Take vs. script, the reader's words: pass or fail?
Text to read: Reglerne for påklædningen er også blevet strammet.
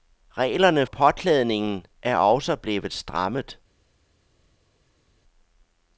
fail